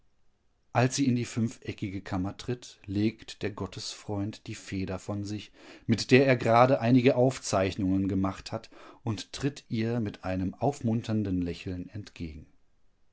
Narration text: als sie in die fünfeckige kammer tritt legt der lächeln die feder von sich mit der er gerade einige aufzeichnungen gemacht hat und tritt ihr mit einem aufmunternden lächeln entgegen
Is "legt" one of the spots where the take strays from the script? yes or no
no